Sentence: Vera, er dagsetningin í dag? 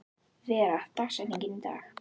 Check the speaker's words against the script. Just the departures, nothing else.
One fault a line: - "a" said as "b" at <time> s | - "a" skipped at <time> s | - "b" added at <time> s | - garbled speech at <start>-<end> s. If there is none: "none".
none